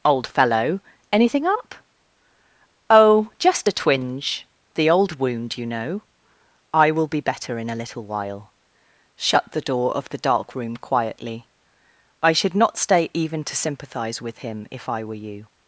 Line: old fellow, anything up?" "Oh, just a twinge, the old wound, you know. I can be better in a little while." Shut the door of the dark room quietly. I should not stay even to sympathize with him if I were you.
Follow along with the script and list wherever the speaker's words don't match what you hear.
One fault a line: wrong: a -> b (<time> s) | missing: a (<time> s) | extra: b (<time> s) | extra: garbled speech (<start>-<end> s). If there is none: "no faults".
wrong: can -> will (6.9 s)